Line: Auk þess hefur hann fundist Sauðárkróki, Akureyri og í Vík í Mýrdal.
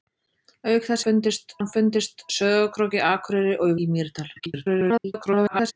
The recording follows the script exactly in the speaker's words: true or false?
false